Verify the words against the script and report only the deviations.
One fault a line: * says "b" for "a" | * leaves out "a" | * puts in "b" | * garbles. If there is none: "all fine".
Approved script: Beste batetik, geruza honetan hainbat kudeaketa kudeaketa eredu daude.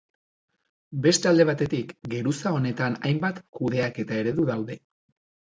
* puts in "alde"
* leaves out "kudeaketa"